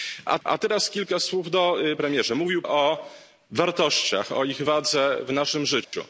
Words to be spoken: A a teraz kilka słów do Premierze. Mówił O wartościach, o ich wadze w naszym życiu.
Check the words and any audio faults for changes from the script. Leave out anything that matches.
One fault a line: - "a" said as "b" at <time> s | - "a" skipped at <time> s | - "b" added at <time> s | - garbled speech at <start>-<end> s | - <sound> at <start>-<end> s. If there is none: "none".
- dropout at 5.8-5.9 s